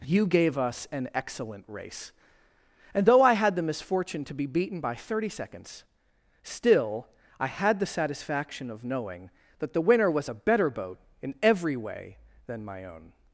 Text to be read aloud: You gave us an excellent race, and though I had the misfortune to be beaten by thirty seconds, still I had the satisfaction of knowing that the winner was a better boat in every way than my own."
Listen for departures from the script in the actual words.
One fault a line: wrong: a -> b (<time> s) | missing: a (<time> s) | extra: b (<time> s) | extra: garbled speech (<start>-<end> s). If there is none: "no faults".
no faults